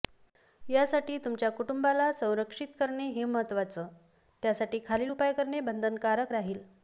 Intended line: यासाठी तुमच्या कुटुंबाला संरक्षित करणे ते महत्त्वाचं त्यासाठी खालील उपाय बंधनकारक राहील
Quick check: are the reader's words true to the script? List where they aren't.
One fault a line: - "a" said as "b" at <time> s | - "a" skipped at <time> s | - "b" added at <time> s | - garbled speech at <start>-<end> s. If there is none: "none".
- "ते" said as "हे" at 3.1 s
- "करणे" added at 5.3 s